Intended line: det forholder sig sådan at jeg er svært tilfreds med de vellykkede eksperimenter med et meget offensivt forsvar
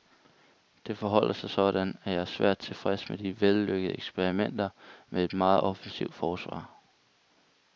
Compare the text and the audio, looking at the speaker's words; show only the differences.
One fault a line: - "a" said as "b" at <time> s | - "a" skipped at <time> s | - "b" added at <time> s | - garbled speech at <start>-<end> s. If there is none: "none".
none